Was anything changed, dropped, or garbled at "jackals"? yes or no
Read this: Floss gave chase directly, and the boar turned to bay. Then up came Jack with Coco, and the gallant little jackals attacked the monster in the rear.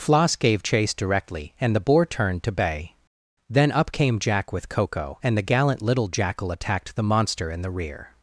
yes